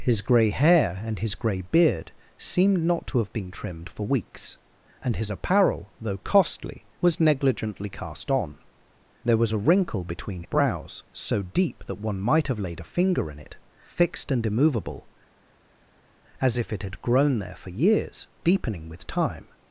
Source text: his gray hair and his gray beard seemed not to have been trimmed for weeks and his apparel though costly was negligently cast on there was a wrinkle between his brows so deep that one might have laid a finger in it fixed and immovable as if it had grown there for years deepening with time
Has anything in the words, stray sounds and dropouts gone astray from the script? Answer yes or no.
yes